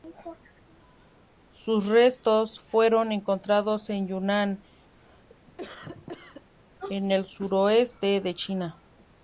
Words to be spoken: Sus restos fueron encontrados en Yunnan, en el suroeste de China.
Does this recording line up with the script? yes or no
yes